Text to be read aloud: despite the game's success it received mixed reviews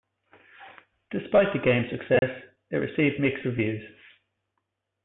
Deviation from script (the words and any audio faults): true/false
true